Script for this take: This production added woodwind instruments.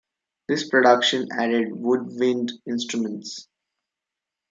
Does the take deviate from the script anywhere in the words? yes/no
no